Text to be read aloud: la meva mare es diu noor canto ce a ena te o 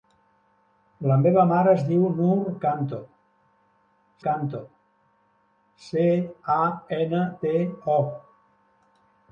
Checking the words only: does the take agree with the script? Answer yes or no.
no